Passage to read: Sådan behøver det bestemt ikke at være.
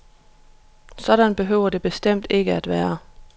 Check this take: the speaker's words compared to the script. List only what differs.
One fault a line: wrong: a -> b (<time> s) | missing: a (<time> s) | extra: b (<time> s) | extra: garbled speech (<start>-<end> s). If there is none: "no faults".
no faults